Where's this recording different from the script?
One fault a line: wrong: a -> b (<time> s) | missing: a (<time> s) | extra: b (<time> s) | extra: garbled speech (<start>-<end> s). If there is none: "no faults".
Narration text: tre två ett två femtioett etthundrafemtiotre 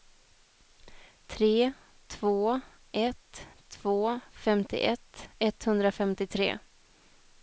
no faults